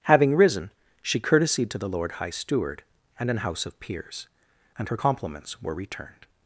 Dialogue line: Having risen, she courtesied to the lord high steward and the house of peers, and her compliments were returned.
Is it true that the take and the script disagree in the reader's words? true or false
true